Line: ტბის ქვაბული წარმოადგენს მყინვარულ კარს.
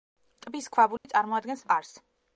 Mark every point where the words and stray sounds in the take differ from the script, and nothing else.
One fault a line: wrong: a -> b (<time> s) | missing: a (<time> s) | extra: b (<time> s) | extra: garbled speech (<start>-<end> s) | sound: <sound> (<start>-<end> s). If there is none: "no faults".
sound: dropout (1.0-1.0 s)
missing: მყინვარულ (1.6 s)